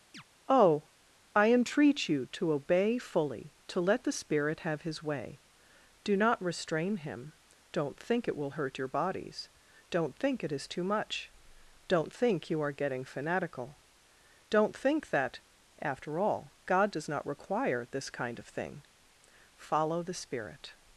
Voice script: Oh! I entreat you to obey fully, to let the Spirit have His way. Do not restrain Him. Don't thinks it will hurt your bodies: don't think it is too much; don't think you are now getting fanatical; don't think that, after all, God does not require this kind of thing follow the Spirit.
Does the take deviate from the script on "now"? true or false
true